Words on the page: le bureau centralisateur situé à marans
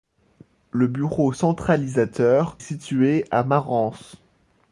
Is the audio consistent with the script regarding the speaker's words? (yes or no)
yes